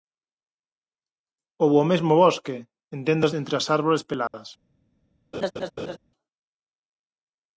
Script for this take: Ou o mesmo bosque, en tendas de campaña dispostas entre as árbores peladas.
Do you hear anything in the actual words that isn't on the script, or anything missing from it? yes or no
yes